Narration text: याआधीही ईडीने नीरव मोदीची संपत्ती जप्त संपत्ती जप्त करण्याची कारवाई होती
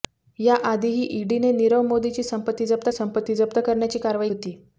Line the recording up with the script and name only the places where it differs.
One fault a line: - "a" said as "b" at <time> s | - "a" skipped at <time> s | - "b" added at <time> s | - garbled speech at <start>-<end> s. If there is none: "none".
none